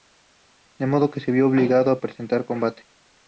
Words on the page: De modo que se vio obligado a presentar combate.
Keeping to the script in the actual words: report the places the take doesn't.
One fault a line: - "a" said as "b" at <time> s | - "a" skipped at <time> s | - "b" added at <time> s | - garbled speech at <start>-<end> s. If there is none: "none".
none